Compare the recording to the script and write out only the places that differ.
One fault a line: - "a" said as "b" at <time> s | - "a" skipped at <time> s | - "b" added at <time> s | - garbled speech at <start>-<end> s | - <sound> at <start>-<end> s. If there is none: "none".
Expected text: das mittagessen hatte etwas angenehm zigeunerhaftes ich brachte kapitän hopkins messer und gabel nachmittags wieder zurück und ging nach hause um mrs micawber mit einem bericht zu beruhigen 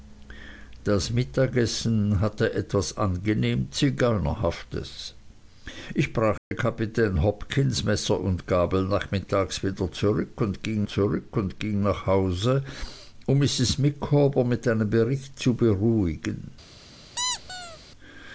- dropout at 6.4-6.5 s
- "zurück und ging" added at 10.8 s
- squeak at 17.2-17.8 s